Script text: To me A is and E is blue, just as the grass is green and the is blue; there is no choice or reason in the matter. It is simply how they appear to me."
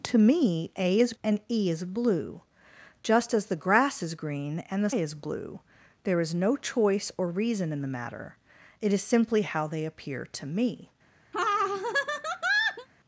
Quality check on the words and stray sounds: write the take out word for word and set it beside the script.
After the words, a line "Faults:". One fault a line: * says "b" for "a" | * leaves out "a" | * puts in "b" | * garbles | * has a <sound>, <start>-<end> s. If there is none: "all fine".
To me A is and E is blue, just as the grass is green and the is blue; there is no choice or reason in the matter. It is simply how they appear to me."
Faults:
* has a laugh, 11.3-12.9 s